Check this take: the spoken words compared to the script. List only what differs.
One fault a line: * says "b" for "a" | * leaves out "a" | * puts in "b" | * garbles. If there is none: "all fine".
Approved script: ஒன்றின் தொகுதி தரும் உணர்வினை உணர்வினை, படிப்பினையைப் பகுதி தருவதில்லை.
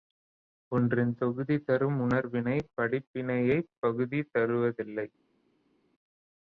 * leaves out "உணர்வினை"